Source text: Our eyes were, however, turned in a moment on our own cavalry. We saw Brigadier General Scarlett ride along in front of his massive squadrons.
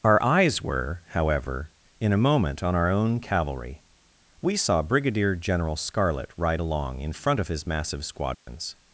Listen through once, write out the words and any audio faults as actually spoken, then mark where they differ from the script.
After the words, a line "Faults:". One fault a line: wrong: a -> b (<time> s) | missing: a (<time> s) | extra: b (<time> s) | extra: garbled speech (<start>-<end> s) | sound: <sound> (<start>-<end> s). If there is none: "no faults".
Our eyes were, however, in a moment on our own cavalry. We saw Brigadier General Scarlett ride along in front of his massive squadrons.
Faults:
missing: turned (1.7 s)
sound: dropout (8.3-8.5 s)